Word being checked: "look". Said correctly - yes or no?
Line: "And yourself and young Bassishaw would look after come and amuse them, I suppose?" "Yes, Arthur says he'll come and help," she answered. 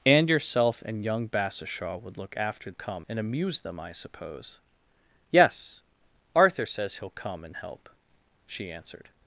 yes